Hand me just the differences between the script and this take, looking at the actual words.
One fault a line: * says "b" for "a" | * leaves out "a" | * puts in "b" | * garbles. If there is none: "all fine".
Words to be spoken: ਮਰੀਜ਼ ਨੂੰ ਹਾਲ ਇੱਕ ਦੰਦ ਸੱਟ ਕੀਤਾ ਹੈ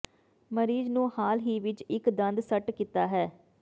* puts in "ਹੀ ਵਿੱਚ"